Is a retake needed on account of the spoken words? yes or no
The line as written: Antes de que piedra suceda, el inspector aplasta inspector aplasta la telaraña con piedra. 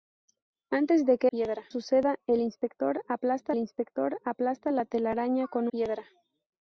no